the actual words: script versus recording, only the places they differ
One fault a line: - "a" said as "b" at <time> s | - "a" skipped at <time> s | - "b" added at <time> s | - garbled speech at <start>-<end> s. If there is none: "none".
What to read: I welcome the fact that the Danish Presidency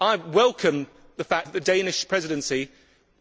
none